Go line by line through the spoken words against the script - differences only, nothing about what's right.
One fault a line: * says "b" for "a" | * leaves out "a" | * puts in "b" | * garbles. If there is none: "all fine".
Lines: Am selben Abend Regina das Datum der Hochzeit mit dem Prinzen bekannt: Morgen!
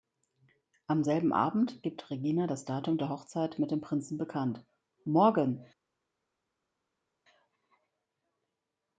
* puts in "gibt"